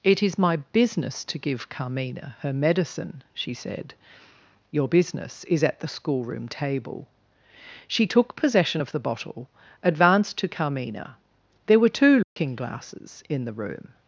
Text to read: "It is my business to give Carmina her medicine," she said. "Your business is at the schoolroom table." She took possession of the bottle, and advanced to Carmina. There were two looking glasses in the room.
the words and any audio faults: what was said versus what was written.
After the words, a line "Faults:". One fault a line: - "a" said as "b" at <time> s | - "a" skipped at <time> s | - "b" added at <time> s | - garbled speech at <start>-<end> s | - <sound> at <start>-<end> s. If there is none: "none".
"It is my business to give Carmina her medicine," she said. "Your business is at the schoolroom table." She took possession of the bottle, advanced to Carmina. There were two looking glasses in the room.
Faults:
- "and" skipped at 9.5 s
- dropout at 12.2-12.4 s